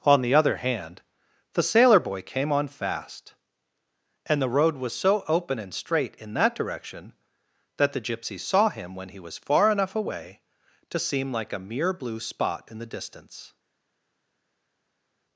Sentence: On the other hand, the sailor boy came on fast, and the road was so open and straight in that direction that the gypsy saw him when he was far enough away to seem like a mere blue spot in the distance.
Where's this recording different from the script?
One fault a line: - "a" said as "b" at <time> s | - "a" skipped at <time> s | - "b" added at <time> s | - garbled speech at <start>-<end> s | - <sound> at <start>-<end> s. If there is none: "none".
none